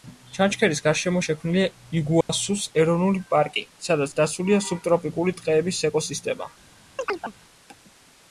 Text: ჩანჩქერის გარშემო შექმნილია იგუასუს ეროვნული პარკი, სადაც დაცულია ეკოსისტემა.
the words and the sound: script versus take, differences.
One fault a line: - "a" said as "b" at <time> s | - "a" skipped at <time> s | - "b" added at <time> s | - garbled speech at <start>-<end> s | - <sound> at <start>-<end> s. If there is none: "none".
- dropout at 2.2-2.3 s
- "სუბტროპიკული ტყეების" added at 4.7 s
- chirp at 7.0-7.3 s